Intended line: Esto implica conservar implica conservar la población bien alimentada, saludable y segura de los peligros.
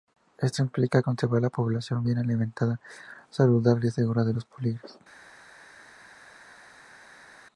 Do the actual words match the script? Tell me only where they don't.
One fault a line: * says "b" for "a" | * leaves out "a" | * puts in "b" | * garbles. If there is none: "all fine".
* leaves out "implica conservar"